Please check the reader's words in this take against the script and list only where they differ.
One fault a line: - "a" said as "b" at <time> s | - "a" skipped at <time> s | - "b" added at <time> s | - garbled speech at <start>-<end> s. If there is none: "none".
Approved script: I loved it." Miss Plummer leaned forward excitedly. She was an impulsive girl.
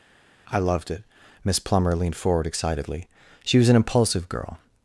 none